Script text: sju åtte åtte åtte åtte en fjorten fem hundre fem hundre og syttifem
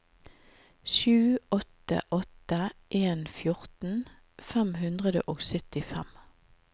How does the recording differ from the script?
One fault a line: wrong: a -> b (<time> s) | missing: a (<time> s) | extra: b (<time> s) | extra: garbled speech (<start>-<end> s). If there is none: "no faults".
missing: åtte åtte (2.7 s)
missing: fem hundre (5.2 s)